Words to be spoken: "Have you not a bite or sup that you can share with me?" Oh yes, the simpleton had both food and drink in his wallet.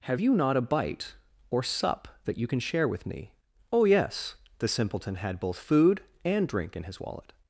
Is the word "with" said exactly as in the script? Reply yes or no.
yes